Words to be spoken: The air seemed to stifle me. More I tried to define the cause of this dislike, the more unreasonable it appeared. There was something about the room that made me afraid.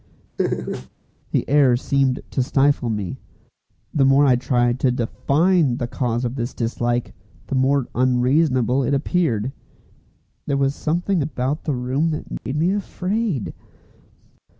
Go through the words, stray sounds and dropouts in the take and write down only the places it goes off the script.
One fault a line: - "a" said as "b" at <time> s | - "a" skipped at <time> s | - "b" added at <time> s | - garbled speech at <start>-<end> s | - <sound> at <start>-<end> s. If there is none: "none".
- laugh at 0.4-0.9 s
- "The" added at 3.9 s
- dropout at 12.4-12.5 s